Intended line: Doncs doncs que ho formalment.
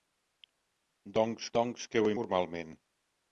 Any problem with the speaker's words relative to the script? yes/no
no